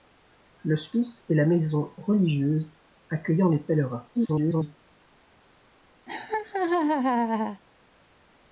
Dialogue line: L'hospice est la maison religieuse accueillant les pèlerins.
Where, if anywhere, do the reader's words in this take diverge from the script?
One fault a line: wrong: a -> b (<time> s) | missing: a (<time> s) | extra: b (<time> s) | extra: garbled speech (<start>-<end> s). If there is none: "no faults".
extra: garbled speech (4.1-4.8 s)